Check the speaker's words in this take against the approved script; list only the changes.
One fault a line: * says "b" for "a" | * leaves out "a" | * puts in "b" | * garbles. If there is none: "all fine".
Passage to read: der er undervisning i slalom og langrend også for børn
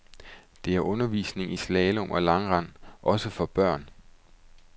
all fine